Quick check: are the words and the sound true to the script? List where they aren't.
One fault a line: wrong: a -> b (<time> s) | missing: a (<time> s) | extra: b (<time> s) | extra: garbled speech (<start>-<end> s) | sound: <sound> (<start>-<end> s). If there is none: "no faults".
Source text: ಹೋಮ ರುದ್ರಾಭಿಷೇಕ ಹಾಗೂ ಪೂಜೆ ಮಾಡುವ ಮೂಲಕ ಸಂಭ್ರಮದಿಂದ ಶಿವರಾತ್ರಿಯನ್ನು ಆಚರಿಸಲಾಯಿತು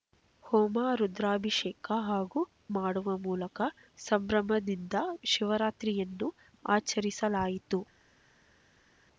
missing: ಪೂಜೆ (2.4 s)